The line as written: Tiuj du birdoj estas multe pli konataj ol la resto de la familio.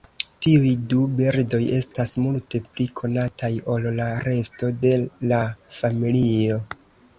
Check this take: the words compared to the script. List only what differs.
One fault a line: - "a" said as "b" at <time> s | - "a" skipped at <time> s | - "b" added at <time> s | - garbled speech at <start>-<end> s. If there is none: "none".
none